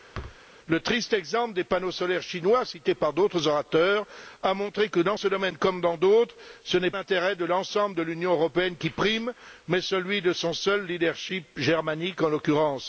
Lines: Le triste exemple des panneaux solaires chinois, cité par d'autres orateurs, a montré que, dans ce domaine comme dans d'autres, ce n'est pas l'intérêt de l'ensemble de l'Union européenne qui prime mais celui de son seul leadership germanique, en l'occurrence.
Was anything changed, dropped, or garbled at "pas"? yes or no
yes